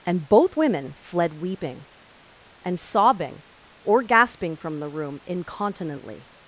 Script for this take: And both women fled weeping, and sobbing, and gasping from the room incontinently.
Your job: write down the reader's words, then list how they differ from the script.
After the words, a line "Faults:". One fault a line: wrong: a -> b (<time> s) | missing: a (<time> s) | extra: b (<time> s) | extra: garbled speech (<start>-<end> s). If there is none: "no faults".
And both women fled weeping, and sobbing, or gasping from the room incontinently.
Faults:
wrong: and -> or (3.8 s)